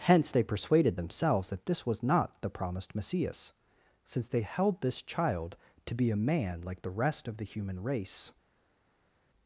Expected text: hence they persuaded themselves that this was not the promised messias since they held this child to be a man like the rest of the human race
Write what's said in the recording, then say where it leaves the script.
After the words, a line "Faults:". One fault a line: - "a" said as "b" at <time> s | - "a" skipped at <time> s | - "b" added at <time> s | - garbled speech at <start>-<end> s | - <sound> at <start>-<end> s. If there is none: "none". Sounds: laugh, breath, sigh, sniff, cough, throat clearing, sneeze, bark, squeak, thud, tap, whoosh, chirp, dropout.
hence they persuaded themselves that this was not the promised messias since they held this child to be a man like the rest of the human race
Faults:
none